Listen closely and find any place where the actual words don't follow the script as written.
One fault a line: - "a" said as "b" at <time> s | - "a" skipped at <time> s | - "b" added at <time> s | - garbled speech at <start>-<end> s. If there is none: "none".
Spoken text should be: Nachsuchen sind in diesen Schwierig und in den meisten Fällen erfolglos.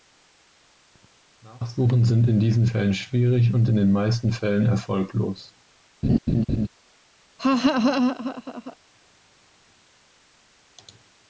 - "Fällen" added at 2.6 s